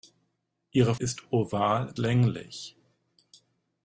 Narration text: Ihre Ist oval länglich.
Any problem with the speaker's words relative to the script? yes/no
no